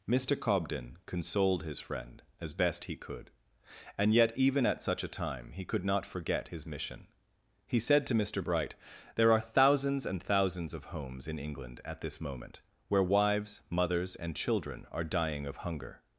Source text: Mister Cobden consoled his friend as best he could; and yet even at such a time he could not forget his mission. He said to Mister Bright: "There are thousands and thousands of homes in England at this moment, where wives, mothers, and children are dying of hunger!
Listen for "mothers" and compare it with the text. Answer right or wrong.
right